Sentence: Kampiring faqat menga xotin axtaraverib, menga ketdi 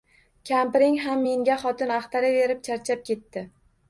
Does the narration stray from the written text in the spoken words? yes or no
yes